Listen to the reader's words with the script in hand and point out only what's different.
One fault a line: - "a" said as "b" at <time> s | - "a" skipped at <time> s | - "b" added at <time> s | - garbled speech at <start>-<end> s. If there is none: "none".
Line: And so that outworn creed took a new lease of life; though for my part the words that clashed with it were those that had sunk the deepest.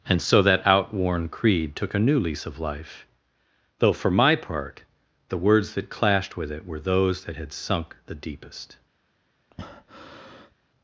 none